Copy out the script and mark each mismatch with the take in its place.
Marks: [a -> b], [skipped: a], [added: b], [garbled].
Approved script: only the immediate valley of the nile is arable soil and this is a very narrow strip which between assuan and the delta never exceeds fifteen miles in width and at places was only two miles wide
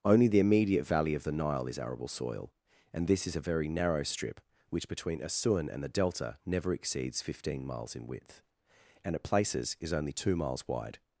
only the immediate valley of the nile is arable soil and this is a very narrow strip which between assuan and the delta never exceeds fifteen miles in width and at places [was -> is] only two miles wide